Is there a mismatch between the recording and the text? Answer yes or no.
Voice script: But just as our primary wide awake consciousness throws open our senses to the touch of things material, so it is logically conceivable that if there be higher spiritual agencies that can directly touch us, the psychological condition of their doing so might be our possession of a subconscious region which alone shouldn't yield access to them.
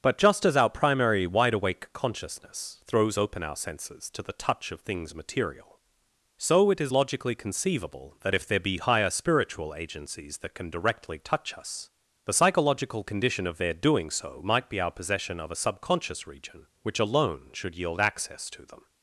yes